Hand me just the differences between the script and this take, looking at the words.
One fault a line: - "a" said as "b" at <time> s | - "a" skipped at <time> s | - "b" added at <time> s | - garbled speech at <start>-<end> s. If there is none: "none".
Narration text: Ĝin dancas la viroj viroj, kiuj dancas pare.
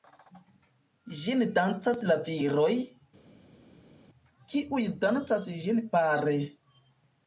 - "viroj" skipped at 2.7 s
- "ĝin" added at 5.7 s